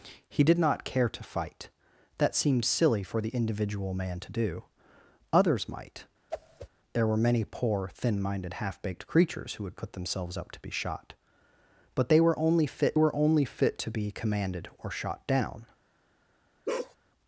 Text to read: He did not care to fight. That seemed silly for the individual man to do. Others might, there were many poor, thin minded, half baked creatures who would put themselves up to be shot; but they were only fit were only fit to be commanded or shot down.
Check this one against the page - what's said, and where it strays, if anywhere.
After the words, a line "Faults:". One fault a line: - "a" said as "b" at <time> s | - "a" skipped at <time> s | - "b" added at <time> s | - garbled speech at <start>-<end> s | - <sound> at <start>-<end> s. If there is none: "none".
He did not care to fight. That seemed silly for the individual man to do. Others might, there were many poor, thin minded, half baked creatures who would put themselves up to be shot; but they were only fit were only fit to be commanded or shot down.
Faults:
- whoosh at 6.3-6.7 s
- bark at 16.7-17.0 s